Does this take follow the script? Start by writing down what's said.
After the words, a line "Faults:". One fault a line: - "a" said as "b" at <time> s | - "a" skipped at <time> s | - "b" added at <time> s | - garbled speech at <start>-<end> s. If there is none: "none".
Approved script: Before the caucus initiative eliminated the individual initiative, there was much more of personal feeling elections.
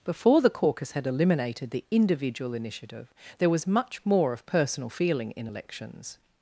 Before the caucus had eliminated the individual initiative, there was much more of personal feeling in elections.
Faults:
- "initiative" said as "had" at 0.9 s
- "in" added at 5.3 s